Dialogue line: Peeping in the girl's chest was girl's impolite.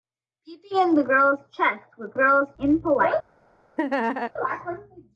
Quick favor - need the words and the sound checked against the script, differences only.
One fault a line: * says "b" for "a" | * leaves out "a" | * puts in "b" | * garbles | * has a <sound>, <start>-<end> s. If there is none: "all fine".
* has a laugh, 3.8-4.3 s